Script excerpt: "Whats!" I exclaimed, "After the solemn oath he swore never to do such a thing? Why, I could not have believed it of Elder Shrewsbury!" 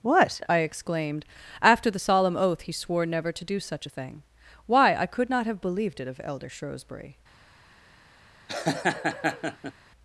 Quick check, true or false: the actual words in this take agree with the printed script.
false